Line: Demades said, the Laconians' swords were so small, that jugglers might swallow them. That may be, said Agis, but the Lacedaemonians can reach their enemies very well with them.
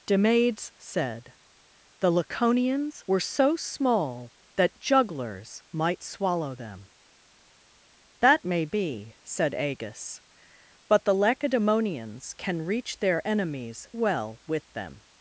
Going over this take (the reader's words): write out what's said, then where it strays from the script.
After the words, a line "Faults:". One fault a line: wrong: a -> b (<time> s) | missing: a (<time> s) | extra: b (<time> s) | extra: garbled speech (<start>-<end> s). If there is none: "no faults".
Demades said, the Laconians' were so small, that jugglers might swallow them. That may be, said Agis, but the Lacedaemonians can reach their enemies well with them.
Faults:
missing: swords (3.0 s)
missing: very (13.9 s)